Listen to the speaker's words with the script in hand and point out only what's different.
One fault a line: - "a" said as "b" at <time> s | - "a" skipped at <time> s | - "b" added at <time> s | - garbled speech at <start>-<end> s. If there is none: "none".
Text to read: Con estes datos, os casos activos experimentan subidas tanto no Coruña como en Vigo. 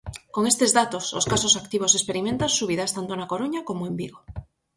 - "no" said as "na" at 3.1 s